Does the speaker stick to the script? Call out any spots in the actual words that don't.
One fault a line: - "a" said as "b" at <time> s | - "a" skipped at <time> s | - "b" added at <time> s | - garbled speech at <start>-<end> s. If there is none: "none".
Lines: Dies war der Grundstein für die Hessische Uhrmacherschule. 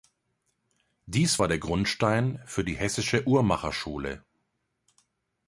none